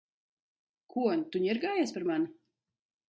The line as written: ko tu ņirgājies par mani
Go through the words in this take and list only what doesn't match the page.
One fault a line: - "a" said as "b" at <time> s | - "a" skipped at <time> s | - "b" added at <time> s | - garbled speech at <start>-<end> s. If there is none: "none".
none